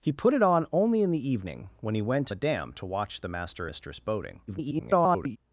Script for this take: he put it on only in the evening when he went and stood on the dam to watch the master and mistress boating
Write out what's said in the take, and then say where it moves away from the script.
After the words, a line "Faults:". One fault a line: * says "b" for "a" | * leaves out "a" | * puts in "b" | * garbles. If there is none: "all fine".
he put it on only in the evening when he went the dam to watch the master mistress boating [garbled]
Faults:
* leaves out "and stood on"
* leaves out "and"
* garbles